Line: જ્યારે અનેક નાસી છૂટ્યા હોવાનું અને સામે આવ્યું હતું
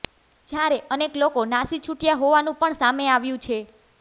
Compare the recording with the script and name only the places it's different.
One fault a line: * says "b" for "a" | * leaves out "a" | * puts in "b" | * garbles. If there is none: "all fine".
* puts in "લોકો"
* says "પણ" for "અને"
* says "છે" for "હતું"